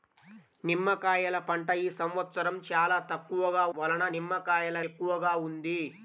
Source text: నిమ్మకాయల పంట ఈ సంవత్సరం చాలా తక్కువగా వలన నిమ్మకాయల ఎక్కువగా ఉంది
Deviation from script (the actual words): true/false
false